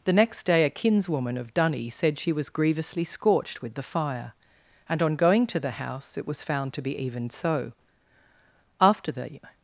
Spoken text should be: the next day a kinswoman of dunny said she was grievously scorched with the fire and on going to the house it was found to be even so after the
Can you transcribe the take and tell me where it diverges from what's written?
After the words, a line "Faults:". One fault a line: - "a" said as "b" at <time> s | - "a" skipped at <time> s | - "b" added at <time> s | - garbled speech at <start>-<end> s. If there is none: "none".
the next day a kinswoman of dunny said she was grievously scorched with the fire and on going to the house it was found to be even so after the
Faults:
none